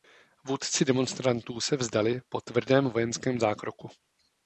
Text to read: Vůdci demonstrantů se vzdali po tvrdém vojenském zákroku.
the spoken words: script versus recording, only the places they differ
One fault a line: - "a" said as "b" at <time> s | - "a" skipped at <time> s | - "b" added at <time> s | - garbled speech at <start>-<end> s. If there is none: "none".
none